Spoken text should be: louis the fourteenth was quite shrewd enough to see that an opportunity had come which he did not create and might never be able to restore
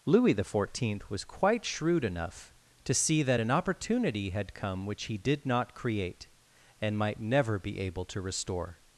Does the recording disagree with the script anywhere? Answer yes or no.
no